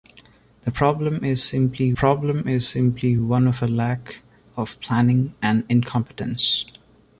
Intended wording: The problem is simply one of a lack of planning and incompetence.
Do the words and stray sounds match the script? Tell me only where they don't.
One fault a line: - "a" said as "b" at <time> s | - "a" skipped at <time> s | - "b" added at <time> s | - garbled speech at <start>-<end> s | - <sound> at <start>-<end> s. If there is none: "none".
- "problem is simply" added at 1.9 s